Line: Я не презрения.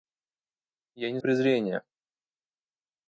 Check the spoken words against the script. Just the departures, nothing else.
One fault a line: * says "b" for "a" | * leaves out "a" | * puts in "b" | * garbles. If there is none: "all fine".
all fine